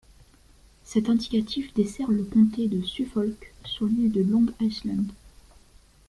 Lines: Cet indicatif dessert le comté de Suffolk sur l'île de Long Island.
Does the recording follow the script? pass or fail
pass